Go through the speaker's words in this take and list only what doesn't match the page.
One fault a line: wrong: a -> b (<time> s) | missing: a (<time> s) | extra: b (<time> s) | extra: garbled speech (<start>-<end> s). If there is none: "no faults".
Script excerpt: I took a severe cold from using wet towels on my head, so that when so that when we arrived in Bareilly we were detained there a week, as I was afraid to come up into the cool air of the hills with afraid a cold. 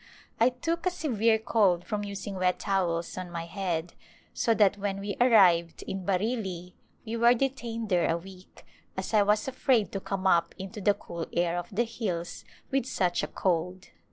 missing: so that when (5.0 s)
wrong: afraid -> such (12.9 s)